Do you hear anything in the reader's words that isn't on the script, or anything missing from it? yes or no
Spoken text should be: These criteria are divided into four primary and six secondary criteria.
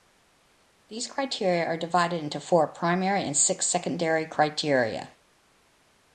no